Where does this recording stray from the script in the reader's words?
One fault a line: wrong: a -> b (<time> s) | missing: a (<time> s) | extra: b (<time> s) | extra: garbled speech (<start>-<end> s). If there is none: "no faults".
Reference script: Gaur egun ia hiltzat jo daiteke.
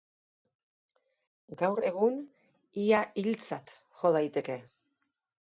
no faults